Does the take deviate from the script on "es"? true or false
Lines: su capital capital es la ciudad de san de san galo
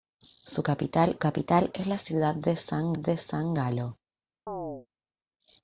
false